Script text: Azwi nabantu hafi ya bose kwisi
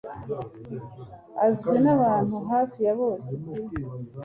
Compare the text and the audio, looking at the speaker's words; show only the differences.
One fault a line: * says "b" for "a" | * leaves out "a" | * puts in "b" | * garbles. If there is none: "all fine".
all fine